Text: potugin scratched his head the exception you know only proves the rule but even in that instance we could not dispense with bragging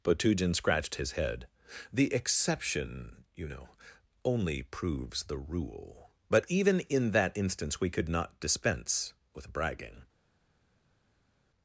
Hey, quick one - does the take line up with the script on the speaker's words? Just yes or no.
yes